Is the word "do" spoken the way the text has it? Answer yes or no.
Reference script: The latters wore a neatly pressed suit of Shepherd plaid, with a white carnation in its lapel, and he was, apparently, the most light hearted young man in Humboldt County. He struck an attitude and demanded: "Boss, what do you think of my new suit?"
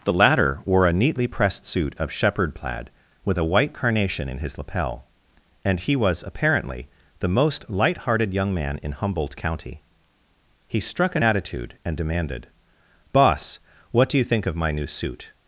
yes